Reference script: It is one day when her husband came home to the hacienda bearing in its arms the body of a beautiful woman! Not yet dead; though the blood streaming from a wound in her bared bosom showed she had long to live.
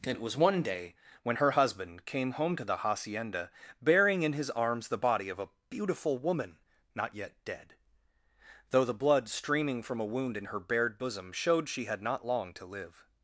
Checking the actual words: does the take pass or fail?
fail